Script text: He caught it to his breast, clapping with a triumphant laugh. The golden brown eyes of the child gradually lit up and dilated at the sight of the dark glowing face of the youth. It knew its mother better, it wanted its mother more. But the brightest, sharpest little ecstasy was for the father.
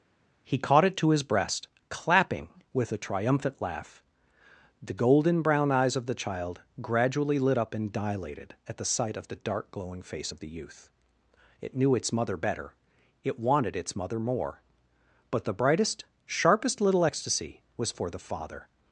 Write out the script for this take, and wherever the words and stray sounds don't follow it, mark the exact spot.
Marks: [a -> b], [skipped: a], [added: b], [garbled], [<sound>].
He caught it to his breast, clapping with a triumphant laugh. The golden brown eyes of the child gradually lit up and dilated at the sight of the dark glowing face of the youth. It knew its mother better, it wanted its mother more. But the brightest, sharpest little ecstasy was for the father.